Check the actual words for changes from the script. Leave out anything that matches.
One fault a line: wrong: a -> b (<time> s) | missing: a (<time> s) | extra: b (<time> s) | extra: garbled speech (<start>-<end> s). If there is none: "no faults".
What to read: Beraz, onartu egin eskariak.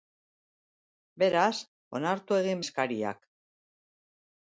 no faults